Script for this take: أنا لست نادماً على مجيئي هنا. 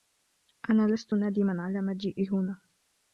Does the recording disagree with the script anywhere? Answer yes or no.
no